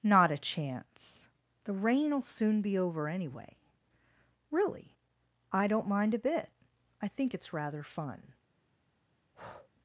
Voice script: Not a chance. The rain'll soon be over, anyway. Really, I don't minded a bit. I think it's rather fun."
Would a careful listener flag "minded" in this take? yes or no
yes